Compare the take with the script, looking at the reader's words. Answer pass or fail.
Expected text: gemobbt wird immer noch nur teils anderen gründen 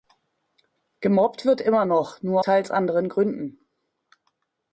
pass